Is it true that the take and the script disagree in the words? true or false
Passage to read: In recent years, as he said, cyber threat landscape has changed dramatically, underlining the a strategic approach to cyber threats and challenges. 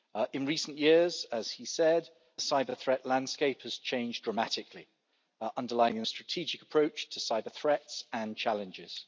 false